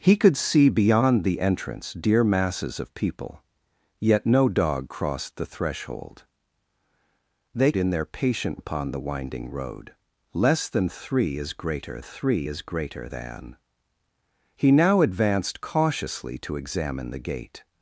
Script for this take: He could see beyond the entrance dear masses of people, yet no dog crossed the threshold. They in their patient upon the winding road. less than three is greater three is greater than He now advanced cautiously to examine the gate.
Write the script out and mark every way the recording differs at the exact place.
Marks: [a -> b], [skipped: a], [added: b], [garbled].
He could see beyond the entrance dear masses of people, yet no dog crossed the threshold. They in their patient upon the winding road. less than three is greater three is greater than He now advanced cautiously to examine the gate.